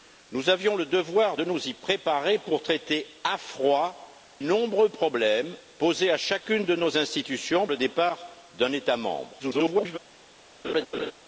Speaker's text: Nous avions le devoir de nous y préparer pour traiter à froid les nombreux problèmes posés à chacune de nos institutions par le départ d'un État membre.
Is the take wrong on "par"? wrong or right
wrong